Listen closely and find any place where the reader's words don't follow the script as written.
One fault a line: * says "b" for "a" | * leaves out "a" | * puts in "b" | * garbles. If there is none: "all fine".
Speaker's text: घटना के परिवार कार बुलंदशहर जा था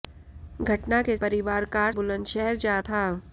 all fine